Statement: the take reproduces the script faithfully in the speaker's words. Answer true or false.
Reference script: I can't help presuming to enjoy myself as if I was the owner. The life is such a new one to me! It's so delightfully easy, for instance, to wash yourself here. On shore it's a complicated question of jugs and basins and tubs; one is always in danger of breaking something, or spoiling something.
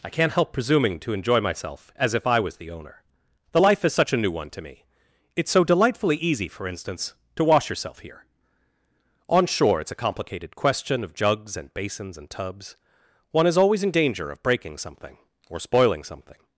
true